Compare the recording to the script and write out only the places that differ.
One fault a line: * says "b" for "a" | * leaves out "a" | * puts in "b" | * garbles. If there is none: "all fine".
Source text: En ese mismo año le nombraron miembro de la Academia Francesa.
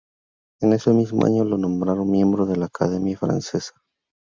* says "lo" for "le"